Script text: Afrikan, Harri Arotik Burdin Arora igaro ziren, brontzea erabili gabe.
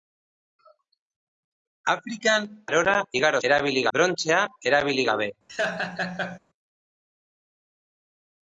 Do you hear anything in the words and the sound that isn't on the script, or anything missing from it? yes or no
yes